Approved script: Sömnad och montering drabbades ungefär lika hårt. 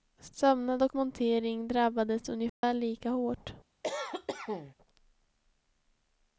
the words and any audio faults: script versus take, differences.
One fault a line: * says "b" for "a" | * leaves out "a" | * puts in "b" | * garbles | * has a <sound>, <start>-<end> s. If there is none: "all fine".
* has a dropout, 2.5-2.6 s
* has a cough, 3.8-4.8 s